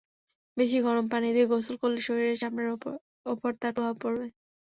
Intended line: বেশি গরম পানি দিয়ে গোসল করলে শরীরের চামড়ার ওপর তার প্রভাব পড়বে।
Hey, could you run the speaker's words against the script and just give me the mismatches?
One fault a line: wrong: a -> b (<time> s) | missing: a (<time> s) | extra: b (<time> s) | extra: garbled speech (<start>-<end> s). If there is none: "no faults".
no faults